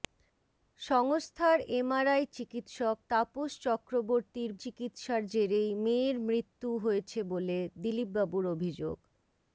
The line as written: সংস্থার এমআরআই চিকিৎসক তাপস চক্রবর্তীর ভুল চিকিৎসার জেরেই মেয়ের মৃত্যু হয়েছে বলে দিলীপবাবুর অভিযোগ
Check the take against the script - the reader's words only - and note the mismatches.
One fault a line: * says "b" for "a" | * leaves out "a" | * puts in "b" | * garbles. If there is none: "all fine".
* leaves out "ভুল"